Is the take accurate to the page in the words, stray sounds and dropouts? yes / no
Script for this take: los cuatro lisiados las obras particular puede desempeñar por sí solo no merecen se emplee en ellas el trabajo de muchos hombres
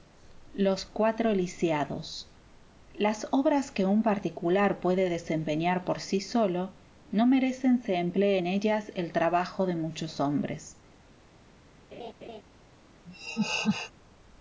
no